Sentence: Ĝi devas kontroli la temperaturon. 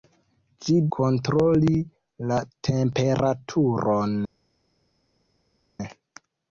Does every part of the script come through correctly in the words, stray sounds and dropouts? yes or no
no